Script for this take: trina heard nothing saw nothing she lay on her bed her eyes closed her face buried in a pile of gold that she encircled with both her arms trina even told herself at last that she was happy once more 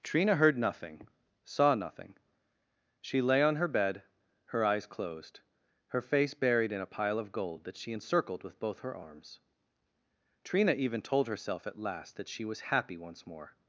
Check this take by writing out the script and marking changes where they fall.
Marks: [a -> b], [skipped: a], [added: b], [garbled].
trina heard nothing saw nothing she lay on her bed her eyes closed her face buried in a pile of gold that she encircled with both her arms trina even told herself at last that she was happy once more